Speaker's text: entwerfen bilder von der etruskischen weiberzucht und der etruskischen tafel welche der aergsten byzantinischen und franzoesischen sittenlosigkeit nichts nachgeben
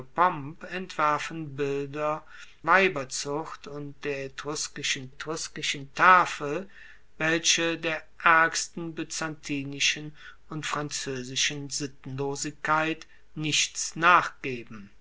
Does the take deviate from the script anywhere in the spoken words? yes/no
yes